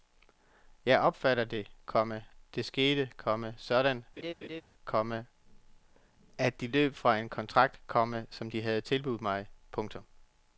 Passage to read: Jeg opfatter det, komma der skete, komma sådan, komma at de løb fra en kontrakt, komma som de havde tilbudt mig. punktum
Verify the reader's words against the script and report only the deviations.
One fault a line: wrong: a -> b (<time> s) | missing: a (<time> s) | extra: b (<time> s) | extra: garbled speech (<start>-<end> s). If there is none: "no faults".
no faults